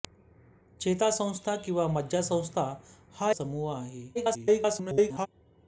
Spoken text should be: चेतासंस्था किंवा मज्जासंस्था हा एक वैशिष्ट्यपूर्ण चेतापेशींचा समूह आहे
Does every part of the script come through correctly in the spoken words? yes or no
no